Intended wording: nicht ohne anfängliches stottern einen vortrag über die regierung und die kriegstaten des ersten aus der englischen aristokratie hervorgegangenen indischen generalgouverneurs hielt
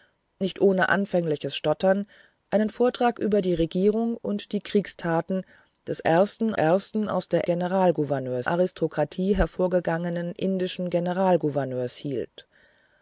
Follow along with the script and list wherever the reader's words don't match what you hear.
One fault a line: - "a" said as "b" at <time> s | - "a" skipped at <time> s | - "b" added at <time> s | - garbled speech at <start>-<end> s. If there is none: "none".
- "ersten" added at 6.5 s
- "englischen" said as "generalgouverneurs" at 7.4 s